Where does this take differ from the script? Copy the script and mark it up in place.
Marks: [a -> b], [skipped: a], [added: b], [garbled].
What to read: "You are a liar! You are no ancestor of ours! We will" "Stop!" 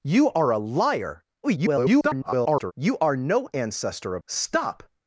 "You are a liar! [garbled] You are no ancestor of [skipped: ours! We will"] "Stop!"